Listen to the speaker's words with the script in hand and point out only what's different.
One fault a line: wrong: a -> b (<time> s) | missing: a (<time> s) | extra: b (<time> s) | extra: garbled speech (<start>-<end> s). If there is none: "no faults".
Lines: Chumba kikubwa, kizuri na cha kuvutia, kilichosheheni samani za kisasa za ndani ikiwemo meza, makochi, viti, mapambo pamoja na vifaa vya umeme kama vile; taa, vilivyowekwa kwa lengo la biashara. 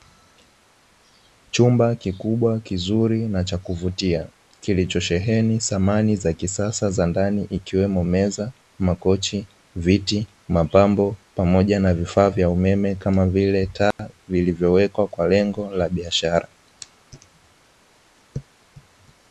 no faults